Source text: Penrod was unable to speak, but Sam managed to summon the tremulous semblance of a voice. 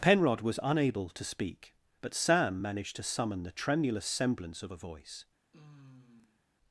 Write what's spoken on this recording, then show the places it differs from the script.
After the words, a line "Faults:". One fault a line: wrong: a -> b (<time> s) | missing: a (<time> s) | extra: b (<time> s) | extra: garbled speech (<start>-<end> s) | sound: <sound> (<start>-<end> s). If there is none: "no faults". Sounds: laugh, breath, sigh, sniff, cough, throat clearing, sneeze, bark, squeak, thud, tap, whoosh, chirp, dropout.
Penrod was unable to speak, but Sam managed to summon the tremulous semblance of a voice.
Faults:
sound: sigh (5.5-6.4 s)